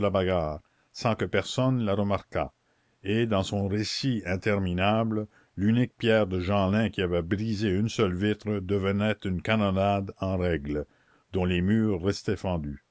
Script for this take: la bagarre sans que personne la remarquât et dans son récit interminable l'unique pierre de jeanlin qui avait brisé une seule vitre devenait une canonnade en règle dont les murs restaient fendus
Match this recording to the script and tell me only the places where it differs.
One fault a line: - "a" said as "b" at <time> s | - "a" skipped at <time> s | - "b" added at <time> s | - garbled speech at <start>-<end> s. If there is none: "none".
none